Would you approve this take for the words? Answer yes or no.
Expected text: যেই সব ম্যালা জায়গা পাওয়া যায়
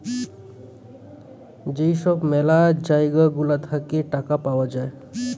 no